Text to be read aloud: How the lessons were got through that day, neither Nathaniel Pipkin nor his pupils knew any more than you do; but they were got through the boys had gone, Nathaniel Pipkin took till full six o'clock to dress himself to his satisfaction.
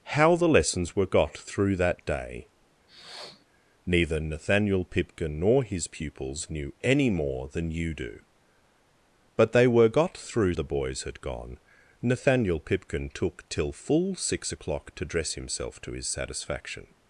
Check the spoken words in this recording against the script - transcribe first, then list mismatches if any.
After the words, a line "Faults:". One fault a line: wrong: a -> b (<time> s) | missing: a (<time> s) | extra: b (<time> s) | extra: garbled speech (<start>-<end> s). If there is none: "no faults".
How the lessons were got through that day, neither Nathaniel Pipkin nor his pupils knew any more than you do; but they were got through the boys had gone, Nathaniel Pipkin took till full six o'clock to dress himself to his satisfaction.
Faults:
no faults